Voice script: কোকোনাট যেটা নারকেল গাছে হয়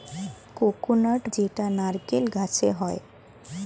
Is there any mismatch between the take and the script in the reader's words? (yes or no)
no